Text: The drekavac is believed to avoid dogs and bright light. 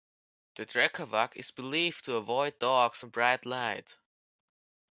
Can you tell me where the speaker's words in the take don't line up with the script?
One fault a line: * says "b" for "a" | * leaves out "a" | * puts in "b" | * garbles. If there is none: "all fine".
all fine